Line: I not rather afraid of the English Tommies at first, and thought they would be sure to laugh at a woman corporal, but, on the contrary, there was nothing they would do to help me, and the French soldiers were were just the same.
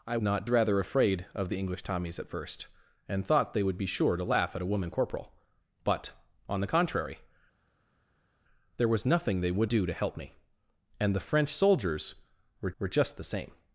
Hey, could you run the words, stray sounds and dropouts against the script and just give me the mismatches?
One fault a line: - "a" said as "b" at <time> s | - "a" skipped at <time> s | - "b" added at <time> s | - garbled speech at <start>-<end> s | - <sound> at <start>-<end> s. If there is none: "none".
none